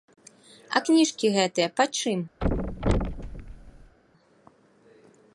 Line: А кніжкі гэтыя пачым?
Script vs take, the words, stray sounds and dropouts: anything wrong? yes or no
yes